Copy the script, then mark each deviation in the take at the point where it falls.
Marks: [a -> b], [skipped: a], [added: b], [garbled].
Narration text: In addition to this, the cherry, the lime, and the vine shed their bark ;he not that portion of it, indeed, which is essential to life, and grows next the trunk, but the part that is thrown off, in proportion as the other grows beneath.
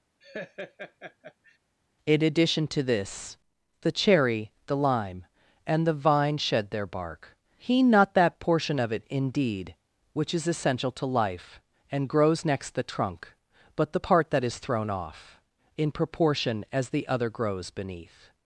In addition to this, the cherry, the lime, and the vine shed their bark ;he not that portion of it, indeed, which is essential to life, and grows next the trunk, but the part that is thrown off, in proportion as the other grows beneath.